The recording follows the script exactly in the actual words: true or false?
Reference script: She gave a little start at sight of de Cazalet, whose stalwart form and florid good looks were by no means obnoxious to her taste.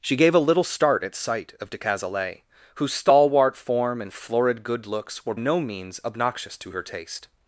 false